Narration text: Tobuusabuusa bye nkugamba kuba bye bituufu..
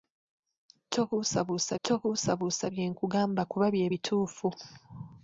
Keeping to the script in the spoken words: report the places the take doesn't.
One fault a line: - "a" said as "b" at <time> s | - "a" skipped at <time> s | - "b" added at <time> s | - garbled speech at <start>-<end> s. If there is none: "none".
- "tobuusabuusa" added at 1.8 s